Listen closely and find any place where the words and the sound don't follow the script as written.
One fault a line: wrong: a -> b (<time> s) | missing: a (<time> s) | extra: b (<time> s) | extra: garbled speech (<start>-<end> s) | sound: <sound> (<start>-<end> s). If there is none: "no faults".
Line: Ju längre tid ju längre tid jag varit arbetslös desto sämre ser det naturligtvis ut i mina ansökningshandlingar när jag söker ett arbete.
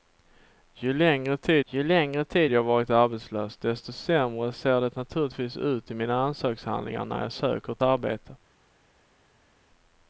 no faults